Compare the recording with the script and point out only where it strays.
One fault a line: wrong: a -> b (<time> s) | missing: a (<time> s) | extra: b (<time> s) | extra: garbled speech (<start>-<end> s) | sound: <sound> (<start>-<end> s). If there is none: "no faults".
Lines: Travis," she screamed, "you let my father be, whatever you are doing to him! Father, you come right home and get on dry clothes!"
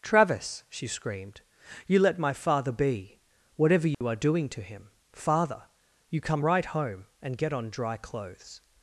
sound: dropout (3.9-4.0 s)